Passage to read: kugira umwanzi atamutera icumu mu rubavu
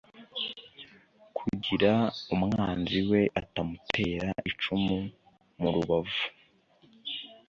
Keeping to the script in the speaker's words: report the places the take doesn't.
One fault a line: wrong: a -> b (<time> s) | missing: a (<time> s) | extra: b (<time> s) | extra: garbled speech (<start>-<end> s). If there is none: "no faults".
extra: we (3.1 s)